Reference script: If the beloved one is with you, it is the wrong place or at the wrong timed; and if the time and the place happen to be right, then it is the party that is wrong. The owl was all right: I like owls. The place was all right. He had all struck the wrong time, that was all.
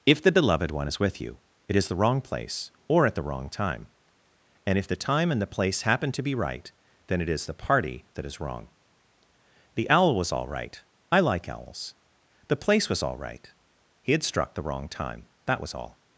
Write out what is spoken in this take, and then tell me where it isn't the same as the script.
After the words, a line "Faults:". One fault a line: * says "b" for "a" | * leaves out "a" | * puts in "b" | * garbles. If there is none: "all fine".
If the beloved one is with you, it is the wrong place or at the wrong time; and if the time and the place happen to be right, then it is the party that is wrong. The owl was all right: I like owls. The place was all right. He had struck the wrong time, that was all.
Faults:
* says "time" for "timed"
* leaves out "all"